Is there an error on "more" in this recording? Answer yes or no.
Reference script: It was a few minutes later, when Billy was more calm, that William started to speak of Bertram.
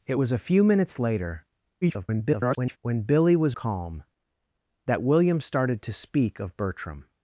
yes